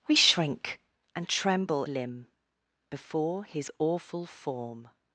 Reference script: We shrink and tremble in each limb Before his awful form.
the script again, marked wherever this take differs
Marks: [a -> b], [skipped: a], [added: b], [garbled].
We shrink and tremble [skipped: in each] limb Before his awful form.